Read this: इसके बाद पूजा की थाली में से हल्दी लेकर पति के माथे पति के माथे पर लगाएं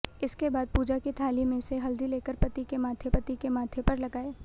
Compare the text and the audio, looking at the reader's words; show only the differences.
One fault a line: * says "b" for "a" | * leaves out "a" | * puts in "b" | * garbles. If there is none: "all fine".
all fine